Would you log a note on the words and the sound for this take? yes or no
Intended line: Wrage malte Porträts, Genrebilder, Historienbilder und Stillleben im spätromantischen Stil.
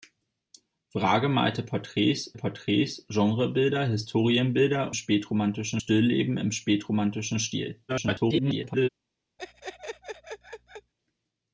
yes